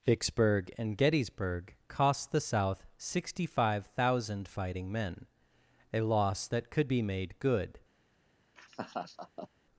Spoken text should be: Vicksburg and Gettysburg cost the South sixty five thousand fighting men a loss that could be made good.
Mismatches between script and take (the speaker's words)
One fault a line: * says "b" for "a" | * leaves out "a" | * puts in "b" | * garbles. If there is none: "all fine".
all fine